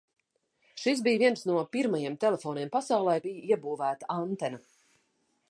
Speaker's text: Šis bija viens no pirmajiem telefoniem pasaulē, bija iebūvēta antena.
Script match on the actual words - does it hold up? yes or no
yes